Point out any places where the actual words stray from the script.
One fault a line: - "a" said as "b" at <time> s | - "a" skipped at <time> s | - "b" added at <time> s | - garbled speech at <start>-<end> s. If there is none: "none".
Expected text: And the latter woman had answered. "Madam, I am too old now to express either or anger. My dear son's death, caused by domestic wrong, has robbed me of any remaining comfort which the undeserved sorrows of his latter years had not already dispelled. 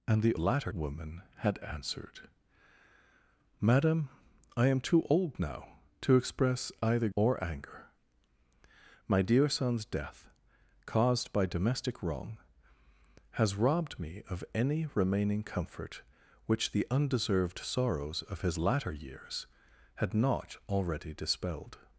none